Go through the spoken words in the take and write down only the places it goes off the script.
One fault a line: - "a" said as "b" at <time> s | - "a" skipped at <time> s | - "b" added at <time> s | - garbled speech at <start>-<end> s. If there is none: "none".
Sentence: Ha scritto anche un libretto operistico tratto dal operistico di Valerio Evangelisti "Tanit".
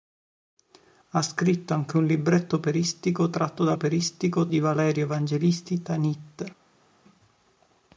none